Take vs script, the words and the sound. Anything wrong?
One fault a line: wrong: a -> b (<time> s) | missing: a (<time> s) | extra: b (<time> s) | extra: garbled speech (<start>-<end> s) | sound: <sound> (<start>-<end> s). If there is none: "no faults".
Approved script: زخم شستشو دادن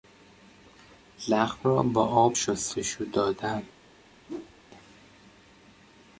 extra: را با آب (1.6 s)
sound: whoosh (4.3-4.5 s)